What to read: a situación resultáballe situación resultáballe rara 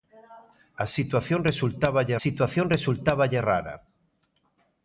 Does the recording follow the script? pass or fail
pass